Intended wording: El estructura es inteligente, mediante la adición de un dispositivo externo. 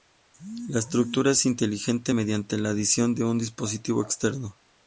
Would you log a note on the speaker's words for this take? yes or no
yes